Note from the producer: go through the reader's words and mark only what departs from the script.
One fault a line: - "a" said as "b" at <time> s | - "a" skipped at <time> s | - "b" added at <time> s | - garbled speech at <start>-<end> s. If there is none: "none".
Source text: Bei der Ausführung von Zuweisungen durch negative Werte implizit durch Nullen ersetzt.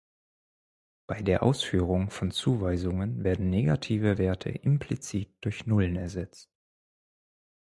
- "durch" said as "werden" at 3.2 s